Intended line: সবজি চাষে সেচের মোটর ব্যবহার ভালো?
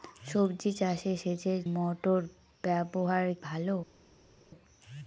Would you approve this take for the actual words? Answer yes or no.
yes